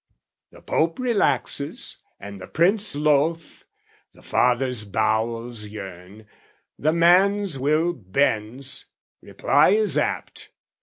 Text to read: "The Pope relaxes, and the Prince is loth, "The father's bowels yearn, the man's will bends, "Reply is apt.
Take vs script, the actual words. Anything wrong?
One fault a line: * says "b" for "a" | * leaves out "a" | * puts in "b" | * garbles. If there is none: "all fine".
* leaves out "is"